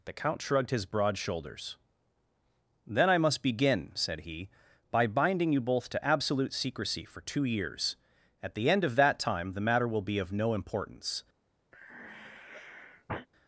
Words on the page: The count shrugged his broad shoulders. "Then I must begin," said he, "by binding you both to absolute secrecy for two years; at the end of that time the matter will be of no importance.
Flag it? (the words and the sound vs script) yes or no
yes